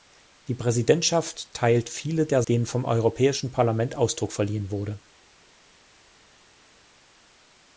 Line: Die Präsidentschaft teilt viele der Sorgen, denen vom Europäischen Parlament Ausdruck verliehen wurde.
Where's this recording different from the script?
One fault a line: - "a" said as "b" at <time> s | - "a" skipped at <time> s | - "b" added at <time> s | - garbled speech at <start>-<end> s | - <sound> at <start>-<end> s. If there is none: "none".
- "Sorgen" skipped at 2.4 s